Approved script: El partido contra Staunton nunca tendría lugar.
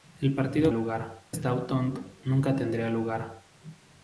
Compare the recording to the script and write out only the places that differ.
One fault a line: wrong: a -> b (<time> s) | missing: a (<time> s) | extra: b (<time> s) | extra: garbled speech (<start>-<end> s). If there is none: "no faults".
wrong: contra -> lugar (0.7 s)